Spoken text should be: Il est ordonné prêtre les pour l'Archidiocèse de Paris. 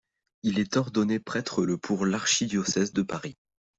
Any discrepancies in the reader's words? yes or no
yes